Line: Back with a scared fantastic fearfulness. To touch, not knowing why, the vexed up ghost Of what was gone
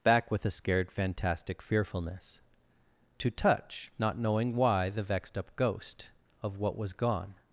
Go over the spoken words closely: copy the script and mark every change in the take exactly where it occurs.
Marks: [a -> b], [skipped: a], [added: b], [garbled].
Back with a scared fantastic fearfulness. To touch, not knowing why, the vexed up ghost Of what was gone